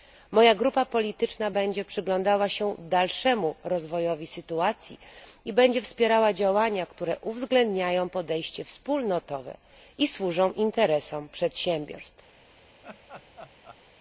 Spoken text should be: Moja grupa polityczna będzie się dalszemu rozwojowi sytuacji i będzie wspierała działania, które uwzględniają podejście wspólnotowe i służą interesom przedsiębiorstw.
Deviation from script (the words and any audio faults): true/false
true